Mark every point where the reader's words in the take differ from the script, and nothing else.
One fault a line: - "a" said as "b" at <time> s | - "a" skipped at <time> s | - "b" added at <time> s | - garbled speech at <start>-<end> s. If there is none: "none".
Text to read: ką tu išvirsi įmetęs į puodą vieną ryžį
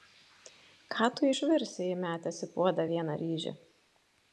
none